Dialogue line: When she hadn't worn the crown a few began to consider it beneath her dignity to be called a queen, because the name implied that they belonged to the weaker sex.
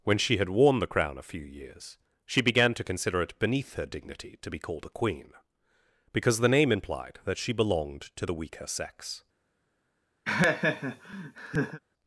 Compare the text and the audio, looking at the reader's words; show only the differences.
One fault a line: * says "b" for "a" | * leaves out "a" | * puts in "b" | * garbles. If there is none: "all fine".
* says "had" for "hadn't"
* puts in "years she"
* says "she" for "they"